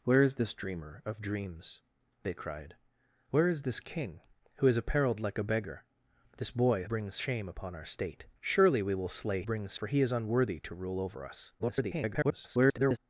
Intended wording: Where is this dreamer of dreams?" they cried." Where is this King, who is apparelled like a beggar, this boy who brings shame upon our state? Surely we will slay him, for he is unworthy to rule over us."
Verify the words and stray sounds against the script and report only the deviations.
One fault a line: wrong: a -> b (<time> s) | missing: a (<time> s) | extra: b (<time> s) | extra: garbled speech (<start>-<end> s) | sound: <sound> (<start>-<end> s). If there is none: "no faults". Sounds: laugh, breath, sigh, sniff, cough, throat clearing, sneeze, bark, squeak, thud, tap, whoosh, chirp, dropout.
missing: who (6.8 s)
wrong: him -> brings (9.4 s)
extra: garbled speech (11.6-13.0 s)